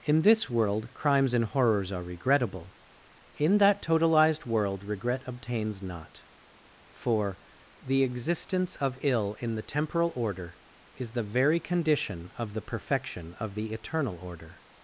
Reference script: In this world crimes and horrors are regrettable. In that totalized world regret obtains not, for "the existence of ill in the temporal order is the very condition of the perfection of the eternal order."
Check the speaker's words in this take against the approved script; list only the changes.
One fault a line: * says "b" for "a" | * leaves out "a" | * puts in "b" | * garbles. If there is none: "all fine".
all fine